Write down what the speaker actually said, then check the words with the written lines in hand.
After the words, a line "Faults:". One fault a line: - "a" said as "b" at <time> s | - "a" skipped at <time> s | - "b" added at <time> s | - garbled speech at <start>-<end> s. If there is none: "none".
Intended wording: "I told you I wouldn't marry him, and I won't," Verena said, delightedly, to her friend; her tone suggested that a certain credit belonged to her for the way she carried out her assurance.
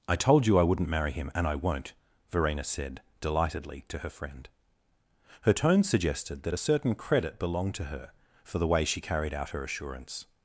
"I told you I wouldn't marry him, and I won't," Verena said, delightedly, to her friend; her tone suggested that a certain credit belonged to her for the way she carried out her assurance.
Faults:
none